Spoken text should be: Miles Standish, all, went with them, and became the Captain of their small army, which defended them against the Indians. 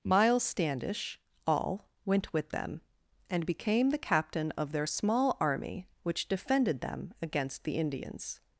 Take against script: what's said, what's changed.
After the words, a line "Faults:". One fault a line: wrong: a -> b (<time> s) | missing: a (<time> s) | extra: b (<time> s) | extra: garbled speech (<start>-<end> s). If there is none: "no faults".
Miles Standish, all, went with them, and became the Captain of their small army, which defended them against the Indians.
Faults:
no faults